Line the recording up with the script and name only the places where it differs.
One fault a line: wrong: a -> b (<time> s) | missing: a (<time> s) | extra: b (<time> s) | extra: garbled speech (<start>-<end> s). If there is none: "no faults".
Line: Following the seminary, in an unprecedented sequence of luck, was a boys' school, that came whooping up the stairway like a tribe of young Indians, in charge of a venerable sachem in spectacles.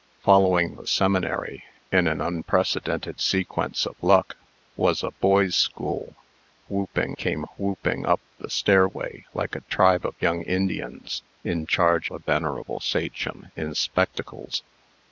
wrong: that -> whooping (6.7 s)
missing: of (12.1 s)